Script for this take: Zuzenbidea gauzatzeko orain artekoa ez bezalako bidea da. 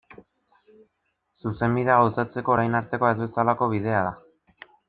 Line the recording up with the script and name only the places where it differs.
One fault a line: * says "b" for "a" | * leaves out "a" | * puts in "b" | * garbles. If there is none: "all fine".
all fine